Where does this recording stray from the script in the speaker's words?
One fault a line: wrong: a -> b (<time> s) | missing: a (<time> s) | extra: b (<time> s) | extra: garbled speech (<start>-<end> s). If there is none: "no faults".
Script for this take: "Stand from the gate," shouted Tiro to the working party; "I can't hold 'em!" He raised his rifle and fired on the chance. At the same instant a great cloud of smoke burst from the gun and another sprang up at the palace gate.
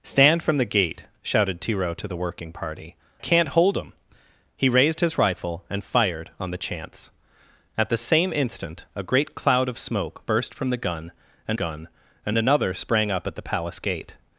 missing: I (3.0 s)
extra: gun and (11.5 s)